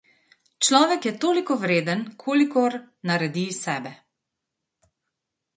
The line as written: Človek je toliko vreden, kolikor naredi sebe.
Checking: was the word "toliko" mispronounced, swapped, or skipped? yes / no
no